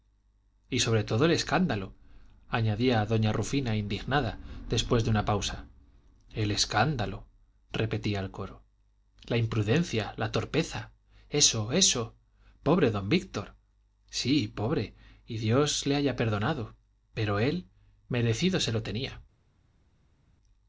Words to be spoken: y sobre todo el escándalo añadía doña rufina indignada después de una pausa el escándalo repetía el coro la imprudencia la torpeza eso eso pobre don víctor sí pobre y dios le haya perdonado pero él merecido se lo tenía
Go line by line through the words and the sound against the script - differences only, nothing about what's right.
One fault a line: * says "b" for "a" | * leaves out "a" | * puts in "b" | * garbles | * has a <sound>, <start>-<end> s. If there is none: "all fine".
all fine